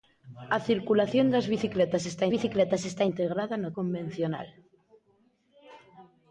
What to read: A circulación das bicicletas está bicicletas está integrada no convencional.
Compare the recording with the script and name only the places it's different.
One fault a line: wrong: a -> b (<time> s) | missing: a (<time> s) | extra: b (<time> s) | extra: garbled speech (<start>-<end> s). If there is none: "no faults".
no faults